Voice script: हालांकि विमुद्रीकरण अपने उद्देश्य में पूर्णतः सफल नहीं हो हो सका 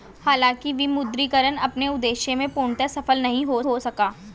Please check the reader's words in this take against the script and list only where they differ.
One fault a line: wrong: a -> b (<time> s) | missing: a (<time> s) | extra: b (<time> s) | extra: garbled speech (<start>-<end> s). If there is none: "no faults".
no faults